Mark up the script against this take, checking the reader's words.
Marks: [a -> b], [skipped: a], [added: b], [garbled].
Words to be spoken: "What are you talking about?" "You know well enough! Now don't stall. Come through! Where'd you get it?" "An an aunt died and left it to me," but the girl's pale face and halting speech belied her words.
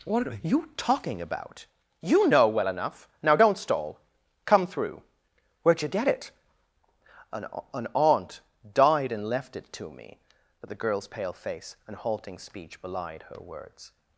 "What are you talking about?" "You know well enough! Now don't stall. Come through! Where'd you get it?" "An an aunt died and left it to me," but the girl's pale face and halting speech belied her words.